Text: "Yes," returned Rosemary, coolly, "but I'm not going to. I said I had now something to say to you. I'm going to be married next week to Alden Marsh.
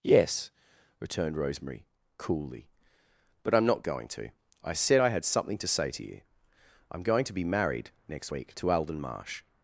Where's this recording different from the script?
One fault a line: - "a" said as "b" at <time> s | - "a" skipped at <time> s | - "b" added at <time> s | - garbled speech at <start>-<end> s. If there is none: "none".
- "now" skipped at 5.3 s